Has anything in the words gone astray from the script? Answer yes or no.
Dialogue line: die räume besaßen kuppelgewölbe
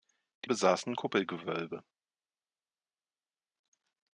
yes